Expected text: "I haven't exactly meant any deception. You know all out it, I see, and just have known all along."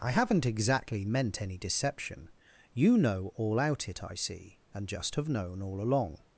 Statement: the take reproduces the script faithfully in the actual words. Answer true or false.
true